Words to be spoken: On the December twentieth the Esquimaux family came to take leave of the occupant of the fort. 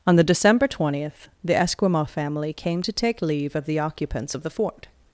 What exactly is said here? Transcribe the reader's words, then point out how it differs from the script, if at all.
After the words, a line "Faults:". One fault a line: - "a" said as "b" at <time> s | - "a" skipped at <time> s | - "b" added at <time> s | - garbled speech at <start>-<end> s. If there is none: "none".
On the December twentieth the Esquimaux family came to take leave of the occupants of the fort.
Faults:
- "occupant" said as "occupants" at 3.8 s